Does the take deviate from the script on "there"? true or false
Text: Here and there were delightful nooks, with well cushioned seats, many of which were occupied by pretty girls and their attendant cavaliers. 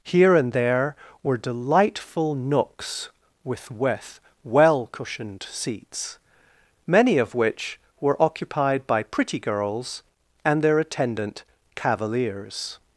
false